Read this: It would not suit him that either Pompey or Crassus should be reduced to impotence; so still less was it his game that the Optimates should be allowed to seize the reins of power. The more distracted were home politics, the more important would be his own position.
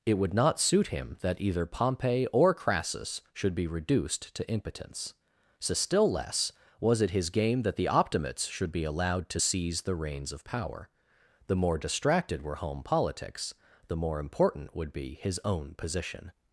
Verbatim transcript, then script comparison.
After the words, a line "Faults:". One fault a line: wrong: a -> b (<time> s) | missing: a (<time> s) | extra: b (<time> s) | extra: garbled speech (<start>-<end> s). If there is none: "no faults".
It would not suit him that either Pompey or Crassus should be reduced to impotence; so still less was it his game that the Optimates should be allowed to seize the reins of power. The more distracted were home politics, the more important would be his own position.
Faults:
no faults